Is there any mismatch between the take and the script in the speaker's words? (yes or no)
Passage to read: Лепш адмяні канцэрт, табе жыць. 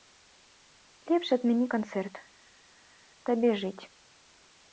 no